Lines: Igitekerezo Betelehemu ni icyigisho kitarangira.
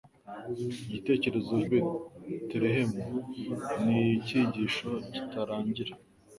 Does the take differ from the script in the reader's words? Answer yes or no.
no